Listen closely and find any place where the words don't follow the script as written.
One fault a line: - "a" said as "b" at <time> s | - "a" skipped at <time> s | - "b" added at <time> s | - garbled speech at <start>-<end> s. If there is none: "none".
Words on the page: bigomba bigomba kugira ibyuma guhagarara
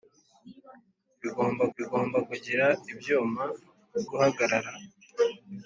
none